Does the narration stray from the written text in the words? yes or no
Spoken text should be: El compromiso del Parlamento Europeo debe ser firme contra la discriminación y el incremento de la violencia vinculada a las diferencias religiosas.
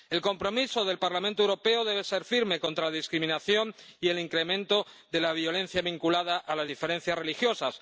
no